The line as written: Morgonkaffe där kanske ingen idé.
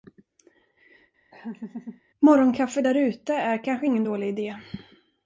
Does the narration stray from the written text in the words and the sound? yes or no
yes